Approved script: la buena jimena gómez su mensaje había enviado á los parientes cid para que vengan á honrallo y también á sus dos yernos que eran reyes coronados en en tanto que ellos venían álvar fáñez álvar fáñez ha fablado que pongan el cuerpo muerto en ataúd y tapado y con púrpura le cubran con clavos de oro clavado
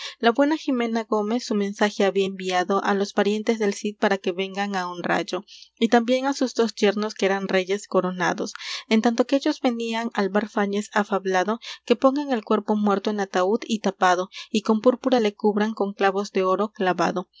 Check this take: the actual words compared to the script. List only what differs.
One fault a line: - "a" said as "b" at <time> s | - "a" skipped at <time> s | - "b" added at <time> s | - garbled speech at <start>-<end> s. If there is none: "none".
- "del" added at 3.6 s
- "en" skipped at 9.0 s
- "álvar fáñez" skipped at 10.9 s